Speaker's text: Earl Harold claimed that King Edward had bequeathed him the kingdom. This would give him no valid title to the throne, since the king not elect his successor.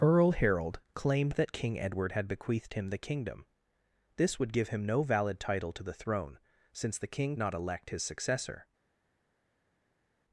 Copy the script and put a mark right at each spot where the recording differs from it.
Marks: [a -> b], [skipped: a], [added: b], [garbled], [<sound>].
Earl Harold claimed that King Edward had bequeathed him the kingdom. This would give him no valid title to the throne, since the king not elect his successor.